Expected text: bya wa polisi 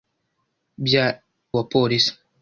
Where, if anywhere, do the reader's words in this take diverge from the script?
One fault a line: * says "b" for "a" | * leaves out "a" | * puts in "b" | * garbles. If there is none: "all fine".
all fine